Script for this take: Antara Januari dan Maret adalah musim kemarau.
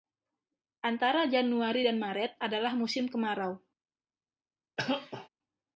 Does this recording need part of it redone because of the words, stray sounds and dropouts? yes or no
yes